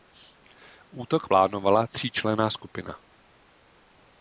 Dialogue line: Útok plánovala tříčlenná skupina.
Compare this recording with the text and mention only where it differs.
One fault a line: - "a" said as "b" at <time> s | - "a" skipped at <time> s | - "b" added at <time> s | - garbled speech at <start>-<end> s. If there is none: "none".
none